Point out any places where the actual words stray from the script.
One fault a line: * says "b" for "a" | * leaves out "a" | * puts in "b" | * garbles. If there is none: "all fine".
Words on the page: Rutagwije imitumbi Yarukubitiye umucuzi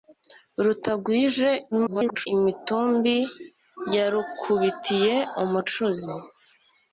* garbles